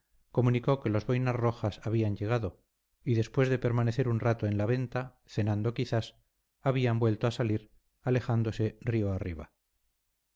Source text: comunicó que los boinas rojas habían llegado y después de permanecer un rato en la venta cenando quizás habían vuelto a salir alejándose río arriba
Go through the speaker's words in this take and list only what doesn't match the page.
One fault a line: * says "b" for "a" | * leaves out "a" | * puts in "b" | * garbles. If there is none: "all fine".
all fine